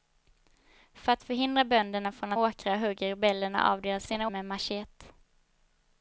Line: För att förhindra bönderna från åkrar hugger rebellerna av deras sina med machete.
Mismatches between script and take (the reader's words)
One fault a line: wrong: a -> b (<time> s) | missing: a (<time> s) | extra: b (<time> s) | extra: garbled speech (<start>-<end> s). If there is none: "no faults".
no faults